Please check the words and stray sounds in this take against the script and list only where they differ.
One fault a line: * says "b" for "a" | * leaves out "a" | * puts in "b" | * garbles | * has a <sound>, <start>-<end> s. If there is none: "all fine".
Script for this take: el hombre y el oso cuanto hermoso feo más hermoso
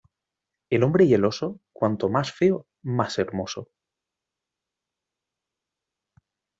* says "más" for "hermoso"